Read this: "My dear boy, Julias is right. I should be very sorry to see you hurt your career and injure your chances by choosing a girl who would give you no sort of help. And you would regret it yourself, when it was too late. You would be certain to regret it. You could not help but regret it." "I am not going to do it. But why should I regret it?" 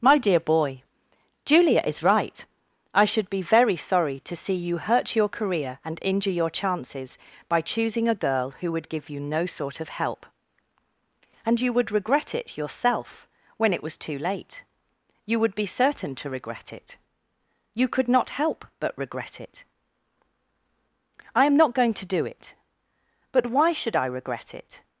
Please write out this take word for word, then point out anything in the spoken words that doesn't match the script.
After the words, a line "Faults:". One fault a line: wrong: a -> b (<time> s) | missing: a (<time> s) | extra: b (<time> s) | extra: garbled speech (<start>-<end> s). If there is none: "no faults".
"My dear boy, Julia is right. I should be very sorry to see you hurt your career and injure your chances by choosing a girl who would give you no sort of help. And you would regret it yourself, when it was too late. You would be certain to regret it. You could not help but regret it." "I am not going to do it. But why should I regret it?"
Faults:
wrong: Julias -> Julia (1.4 s)